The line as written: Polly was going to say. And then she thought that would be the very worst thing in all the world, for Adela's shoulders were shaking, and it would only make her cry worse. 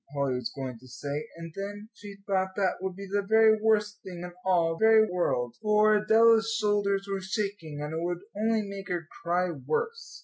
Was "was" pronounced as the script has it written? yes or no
yes